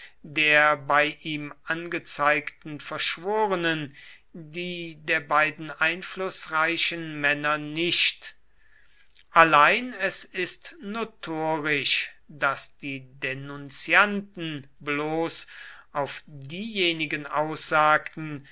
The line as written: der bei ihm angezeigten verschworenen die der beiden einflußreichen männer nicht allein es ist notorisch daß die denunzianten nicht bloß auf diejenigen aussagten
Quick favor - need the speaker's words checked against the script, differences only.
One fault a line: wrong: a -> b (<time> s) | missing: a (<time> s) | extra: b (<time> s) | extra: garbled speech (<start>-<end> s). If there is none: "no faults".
missing: nicht (14.7 s)